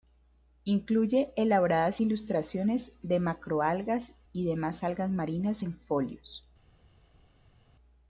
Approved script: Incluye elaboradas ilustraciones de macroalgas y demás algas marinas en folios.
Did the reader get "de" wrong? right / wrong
right